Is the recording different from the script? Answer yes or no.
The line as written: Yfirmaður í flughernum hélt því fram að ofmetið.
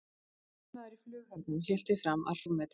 no